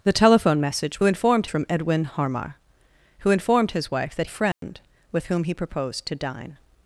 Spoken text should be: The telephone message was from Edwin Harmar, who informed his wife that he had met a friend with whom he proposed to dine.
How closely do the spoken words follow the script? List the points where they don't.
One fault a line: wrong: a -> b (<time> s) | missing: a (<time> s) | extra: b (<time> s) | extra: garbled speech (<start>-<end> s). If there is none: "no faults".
wrong: was -> informed (1.0 s)
missing: he had met (4.3 s)